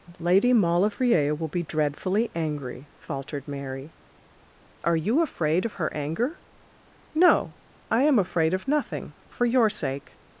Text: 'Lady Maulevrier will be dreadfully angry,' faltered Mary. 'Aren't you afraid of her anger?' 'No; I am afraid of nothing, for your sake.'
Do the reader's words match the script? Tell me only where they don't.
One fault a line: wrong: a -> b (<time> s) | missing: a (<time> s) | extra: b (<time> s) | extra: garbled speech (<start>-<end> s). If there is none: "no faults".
wrong: Aren't -> Are (4.8 s)